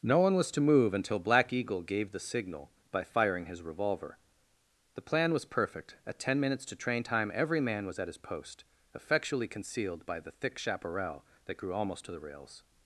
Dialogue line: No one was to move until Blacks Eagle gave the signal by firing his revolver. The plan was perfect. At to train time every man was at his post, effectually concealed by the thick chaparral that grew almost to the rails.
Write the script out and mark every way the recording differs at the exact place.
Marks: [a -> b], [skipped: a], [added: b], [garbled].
No one was to move until [Blacks -> Black] Eagle gave the signal by firing his revolver. The plan was perfect. At [added: ten minutes] to train time every man was at his post, effectually concealed by the thick chaparral that grew almost to the rails.